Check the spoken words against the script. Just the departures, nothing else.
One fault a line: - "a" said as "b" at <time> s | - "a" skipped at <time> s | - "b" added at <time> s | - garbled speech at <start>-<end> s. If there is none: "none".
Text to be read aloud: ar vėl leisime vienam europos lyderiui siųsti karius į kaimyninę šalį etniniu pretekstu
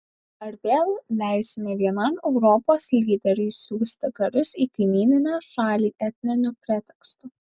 none